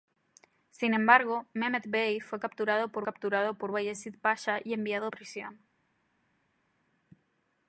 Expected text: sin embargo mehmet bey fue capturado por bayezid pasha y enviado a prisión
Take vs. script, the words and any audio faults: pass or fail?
fail